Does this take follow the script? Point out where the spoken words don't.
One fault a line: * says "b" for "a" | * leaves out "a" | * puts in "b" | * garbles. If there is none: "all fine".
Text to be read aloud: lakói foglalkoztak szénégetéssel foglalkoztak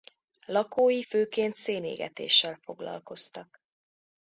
* says "főként" for "foglalkoztak"